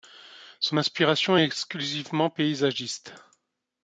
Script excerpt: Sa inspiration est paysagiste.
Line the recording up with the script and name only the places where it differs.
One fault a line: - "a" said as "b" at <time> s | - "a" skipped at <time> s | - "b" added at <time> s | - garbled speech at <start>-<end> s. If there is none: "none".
- "Sa" said as "Son" at 0.6 s
- "exclusivement" added at 1.4 s